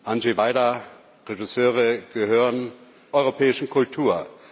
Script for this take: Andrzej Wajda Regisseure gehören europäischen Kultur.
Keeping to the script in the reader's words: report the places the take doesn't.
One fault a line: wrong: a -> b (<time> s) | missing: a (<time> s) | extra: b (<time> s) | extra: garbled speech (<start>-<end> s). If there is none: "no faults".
no faults